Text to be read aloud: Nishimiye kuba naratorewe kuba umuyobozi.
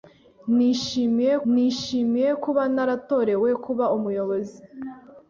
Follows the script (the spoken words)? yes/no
no